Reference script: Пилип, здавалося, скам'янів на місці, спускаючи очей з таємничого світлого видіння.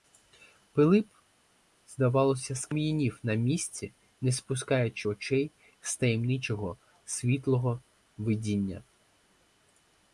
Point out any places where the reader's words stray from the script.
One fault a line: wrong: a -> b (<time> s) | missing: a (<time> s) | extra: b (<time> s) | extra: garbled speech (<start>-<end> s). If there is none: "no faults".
extra: не (4.2 s)